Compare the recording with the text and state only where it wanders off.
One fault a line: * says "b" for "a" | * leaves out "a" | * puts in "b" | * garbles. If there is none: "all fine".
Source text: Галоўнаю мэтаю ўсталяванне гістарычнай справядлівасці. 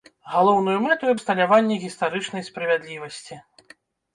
all fine